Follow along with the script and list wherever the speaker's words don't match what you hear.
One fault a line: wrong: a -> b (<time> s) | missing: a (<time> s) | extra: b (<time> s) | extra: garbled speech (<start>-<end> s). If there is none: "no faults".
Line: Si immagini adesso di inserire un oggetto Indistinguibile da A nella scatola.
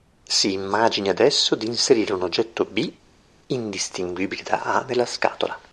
extra: B (2.6 s)